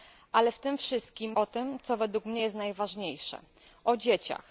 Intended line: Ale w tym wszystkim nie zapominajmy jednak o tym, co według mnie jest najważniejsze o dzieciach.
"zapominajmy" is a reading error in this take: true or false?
true